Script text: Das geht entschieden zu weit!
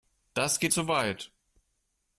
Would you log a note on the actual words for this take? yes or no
yes